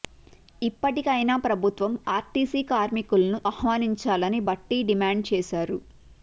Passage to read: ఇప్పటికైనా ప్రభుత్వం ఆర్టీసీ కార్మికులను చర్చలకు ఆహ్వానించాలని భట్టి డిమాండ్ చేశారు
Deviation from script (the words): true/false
true